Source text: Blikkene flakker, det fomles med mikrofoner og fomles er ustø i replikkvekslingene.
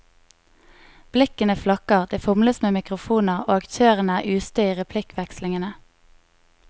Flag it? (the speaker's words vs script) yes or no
yes